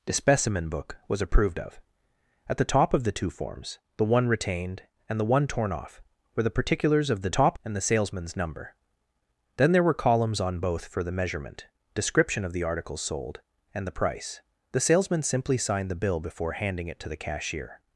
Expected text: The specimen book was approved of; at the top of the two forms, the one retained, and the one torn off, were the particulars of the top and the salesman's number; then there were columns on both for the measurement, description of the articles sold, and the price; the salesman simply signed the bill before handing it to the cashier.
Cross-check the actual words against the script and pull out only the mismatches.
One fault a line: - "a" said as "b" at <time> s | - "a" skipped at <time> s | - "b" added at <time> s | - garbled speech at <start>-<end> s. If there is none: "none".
none